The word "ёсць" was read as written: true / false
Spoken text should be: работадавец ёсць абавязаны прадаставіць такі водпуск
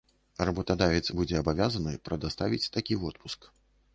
false